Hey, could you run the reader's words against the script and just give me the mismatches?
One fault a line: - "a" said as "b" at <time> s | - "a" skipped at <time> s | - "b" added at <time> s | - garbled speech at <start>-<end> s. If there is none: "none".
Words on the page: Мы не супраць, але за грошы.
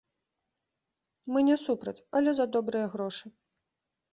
- "добрыя" added at 2.6 s